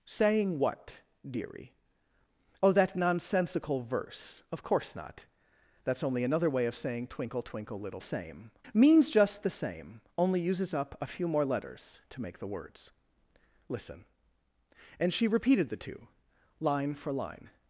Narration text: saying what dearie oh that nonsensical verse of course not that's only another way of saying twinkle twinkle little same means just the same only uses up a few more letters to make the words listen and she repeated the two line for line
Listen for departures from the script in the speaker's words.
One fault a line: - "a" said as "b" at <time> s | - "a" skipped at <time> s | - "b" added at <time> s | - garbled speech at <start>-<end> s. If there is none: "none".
none